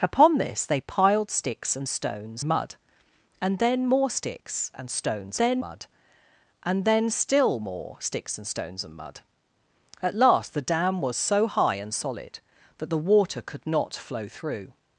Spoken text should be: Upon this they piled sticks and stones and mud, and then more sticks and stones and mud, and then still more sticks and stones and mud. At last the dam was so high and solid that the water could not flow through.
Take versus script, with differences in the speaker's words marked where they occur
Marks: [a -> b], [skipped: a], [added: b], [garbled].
Upon this they piled sticks and stones [skipped: and] mud, and then more sticks and stones [and -> then] mud, and then still more sticks and stones and mud. At last the dam was so high and solid that the water could not flow through.